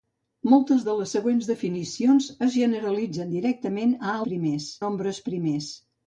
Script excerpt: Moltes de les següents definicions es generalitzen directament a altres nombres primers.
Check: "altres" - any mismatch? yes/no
yes